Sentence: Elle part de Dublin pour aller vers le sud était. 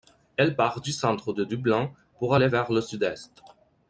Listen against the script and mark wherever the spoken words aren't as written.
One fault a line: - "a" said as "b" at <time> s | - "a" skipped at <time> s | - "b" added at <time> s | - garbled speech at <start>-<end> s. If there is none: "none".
- "du centre" added at 0.8 s
- "était" said as "est" at 3.0 s